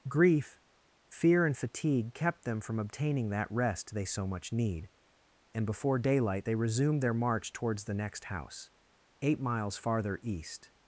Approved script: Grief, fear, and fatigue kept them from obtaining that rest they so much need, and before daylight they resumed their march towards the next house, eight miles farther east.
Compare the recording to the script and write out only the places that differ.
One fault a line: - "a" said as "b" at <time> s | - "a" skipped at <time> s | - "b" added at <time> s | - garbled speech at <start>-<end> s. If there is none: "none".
none